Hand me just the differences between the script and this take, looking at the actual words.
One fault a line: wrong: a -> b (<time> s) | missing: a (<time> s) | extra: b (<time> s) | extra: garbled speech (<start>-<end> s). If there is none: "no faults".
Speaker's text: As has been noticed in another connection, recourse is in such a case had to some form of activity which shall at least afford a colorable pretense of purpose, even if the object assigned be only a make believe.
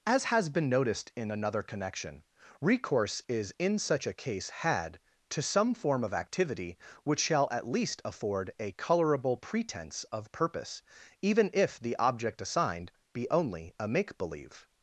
no faults